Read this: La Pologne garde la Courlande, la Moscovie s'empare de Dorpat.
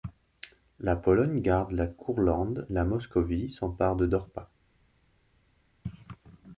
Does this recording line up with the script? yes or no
yes